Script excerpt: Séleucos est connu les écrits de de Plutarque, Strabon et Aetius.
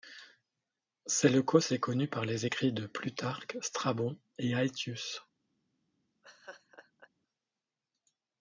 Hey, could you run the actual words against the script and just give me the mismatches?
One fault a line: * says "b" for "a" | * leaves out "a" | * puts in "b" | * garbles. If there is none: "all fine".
* puts in "par"
* leaves out "de"